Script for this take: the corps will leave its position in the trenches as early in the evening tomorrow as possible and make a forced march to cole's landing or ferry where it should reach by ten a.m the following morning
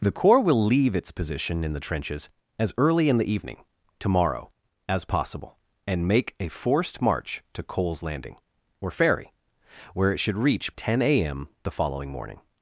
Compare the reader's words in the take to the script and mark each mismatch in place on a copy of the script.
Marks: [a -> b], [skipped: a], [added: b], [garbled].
the corps will leave its position in the trenches as early in the evening tomorrow as possible and make a forced march to cole's landing or ferry where it should reach [skipped: by] ten a.m the following morning